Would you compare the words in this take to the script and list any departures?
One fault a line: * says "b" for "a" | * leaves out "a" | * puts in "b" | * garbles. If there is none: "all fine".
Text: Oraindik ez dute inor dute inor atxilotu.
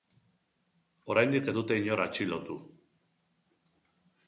* leaves out "dute inor"